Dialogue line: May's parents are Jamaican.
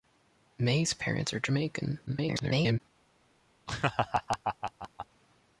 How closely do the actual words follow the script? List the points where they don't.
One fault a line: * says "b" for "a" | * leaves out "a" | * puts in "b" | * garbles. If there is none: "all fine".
* garbles